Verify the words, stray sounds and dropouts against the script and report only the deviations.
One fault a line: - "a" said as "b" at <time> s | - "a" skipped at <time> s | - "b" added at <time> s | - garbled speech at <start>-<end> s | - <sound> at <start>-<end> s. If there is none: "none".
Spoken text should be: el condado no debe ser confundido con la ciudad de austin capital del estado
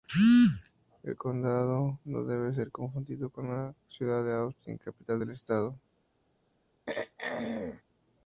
- throat clearing at 6.9-7.8 s